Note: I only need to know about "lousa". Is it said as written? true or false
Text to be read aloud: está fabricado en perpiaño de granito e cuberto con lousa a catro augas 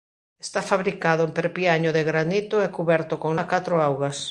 false